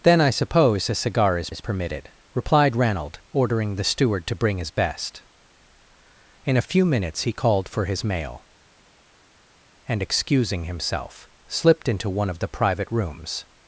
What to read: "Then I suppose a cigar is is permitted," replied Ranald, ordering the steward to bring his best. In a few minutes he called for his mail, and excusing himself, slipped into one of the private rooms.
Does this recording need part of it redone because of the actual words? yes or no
no